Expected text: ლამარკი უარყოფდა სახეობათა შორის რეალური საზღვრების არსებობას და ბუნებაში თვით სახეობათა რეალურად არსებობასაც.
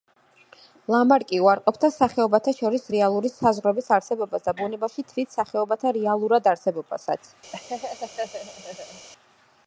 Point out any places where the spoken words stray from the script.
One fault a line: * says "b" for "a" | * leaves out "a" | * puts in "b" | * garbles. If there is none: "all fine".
all fine